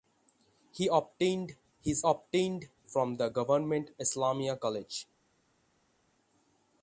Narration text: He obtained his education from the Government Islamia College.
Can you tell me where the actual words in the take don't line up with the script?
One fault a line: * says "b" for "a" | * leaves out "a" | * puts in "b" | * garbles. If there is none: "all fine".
* says "obtained" for "education"